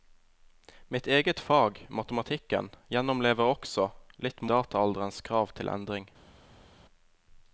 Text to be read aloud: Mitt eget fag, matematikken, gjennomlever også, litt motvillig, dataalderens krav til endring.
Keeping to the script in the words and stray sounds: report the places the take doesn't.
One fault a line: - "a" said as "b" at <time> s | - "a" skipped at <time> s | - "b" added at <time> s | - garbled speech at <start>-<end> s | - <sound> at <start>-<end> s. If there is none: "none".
- "motvillig" skipped at 4.4 s